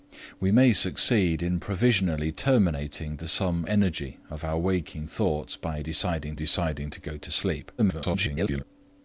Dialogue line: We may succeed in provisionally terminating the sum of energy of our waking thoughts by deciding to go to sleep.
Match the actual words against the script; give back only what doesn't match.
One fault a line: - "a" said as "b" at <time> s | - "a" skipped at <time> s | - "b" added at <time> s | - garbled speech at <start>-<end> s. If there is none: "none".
- "of" skipped at 3.7 s
- "deciding" added at 6.3 s
- garbled speech at 7.8-8.6 s